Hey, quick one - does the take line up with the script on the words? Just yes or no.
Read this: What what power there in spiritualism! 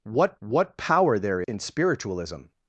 yes